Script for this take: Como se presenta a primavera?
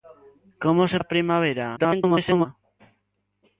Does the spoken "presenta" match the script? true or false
false